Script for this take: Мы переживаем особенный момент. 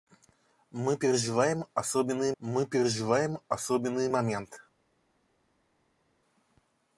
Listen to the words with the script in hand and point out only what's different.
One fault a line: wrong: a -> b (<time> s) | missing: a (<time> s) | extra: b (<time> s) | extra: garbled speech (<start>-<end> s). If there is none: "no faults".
extra: мы переживаем особенный (2.4 s)